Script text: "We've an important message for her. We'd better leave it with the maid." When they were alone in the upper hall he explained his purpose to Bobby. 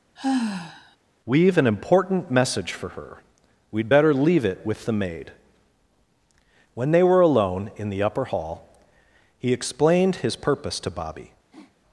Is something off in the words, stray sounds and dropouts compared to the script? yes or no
yes